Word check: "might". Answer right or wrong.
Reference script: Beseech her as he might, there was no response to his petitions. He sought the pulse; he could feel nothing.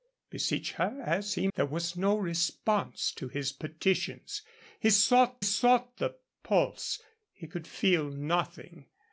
wrong